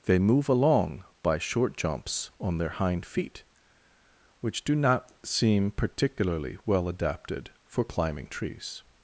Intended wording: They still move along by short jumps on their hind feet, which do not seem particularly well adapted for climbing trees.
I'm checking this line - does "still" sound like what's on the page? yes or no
no